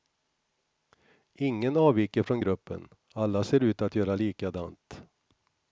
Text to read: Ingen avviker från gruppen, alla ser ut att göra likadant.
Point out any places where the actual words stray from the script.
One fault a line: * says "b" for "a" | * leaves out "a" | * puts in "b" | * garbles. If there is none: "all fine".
all fine